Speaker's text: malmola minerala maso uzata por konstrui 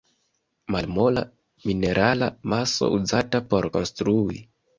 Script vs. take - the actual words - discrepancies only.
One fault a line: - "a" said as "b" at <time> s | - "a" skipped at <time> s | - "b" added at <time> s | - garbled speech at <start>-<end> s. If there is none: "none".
none